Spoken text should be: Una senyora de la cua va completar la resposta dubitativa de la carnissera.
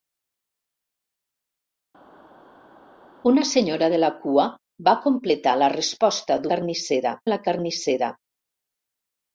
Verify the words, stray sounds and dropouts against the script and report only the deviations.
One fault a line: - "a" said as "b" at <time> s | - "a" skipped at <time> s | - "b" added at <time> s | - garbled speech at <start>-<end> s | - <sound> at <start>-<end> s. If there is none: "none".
- "dubitativa" said as "carnissera" at 6.5 s